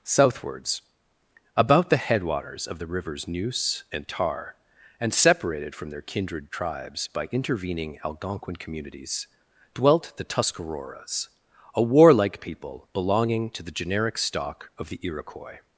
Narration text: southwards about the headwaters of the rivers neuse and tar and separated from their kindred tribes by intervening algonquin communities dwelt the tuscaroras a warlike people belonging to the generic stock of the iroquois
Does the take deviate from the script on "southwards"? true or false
false